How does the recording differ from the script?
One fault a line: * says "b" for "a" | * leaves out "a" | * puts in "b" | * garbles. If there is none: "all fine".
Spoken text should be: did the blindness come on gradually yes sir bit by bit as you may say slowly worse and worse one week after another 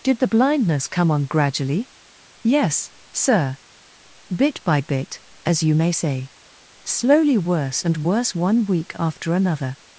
all fine